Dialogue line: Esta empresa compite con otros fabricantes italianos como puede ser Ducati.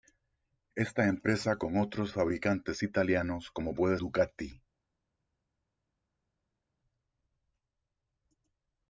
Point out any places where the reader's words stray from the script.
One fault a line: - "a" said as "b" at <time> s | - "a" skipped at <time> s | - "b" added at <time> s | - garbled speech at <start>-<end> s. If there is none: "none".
- "compite" skipped at 1.6 s
- "ser" skipped at 4.0 s